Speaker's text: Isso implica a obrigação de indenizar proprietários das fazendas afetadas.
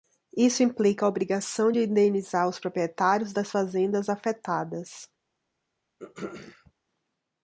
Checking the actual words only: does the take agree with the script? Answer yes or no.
no